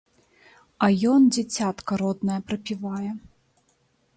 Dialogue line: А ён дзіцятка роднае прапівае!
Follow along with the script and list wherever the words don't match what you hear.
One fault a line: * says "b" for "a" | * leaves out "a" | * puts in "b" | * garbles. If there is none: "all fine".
all fine